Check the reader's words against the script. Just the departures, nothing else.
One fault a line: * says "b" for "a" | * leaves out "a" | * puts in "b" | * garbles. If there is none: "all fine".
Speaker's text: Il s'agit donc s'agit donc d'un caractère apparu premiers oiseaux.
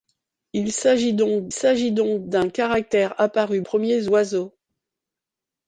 all fine